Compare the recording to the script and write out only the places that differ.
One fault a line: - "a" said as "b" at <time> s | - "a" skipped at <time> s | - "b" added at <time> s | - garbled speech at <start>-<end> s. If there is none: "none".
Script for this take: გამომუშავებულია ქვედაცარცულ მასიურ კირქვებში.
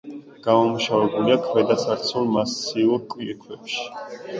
none